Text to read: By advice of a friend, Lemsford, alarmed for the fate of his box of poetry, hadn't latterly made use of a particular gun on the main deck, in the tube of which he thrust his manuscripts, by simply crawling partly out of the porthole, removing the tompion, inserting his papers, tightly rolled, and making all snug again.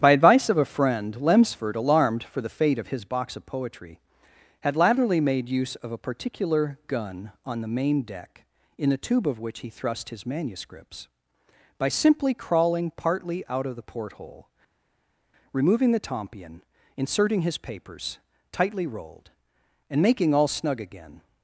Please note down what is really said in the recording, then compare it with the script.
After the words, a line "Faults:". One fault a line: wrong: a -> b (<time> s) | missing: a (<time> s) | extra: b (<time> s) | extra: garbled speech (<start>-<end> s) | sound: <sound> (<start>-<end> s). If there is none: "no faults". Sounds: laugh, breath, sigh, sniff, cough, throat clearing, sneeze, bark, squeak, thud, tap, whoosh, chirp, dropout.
By advice of a friend, Lemsford, alarmed for the fate of his box of poetry, had latterly made use of a particular gun on the main deck, in the tube of which he thrust his manuscripts, by simply crawling partly out of the porthole, removing the tompion, inserting his papers, tightly rolled, and making all snug again.
Faults:
wrong: hadn't -> had (4.6 s)